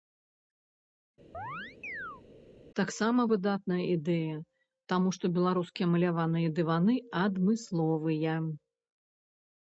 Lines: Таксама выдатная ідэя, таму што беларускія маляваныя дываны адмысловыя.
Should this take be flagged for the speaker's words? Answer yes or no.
no